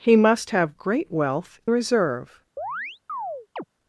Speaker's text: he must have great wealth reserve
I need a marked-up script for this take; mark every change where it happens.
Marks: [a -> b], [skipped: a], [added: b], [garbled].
he must have great wealth reserve